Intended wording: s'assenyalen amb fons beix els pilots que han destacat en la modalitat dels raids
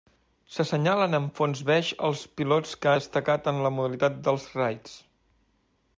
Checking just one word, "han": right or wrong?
wrong